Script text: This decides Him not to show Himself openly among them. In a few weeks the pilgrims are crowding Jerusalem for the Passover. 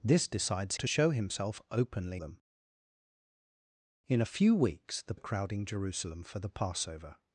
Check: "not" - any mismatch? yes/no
yes